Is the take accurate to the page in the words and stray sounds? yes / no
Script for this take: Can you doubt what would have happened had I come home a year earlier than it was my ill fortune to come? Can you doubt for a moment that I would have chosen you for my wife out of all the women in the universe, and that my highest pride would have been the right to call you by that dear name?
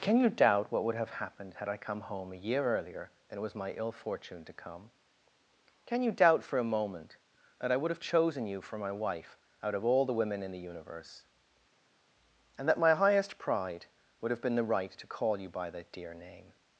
no